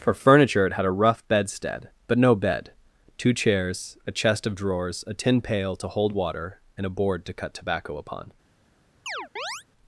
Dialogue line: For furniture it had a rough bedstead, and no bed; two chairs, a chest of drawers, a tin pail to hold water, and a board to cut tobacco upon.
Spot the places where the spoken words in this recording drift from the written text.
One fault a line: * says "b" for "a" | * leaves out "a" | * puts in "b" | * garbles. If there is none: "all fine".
* says "but" for "and"